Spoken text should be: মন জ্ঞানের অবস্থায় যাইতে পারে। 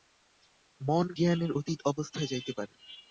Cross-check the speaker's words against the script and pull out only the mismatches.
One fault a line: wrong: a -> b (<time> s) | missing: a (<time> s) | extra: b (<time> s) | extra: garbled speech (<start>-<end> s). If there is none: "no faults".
extra: অতীত (1.5 s)